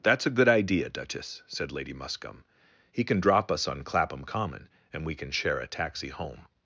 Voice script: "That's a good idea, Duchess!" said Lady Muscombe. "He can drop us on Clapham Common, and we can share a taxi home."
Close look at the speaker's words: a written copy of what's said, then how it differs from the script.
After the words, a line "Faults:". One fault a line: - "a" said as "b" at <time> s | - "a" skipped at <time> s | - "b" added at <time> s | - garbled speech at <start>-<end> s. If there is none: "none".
"That's a good idea, Duchess!" said Lady Muscombe. "He can drop us on Clapham Common, and we can share a taxi home."
Faults:
none